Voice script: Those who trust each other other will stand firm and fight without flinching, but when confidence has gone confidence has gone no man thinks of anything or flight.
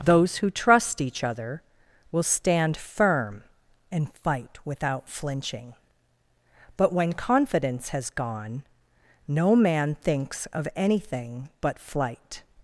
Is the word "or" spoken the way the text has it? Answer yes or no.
no